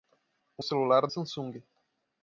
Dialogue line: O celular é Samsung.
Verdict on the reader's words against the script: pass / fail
pass